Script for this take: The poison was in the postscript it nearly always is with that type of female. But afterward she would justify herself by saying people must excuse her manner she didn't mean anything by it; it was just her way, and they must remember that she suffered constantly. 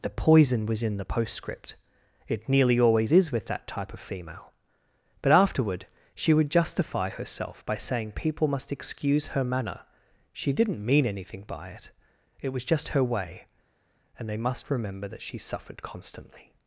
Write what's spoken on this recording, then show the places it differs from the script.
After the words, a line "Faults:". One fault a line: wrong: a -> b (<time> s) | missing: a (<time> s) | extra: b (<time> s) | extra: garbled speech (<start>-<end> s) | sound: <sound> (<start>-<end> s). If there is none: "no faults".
The poison was in the postscript it nearly always is with that type of female. But afterward she would justify herself by saying people must excuse her manner she didn't mean anything by it; it was just her way, and they must remember that she suffered constantly.
Faults:
no faults